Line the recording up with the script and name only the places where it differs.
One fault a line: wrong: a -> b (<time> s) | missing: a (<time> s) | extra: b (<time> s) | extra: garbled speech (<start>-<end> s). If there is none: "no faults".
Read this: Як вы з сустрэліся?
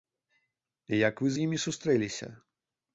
extra: імі (1.5 s)